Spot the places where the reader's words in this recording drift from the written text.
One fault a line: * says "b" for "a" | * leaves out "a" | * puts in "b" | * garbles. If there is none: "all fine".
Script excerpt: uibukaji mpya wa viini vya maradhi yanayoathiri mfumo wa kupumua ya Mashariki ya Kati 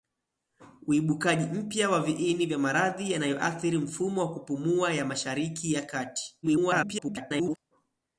* garbles